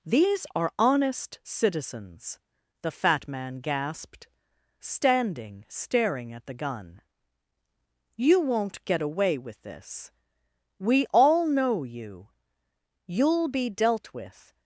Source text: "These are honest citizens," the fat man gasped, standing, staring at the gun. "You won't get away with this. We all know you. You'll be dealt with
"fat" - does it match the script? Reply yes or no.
yes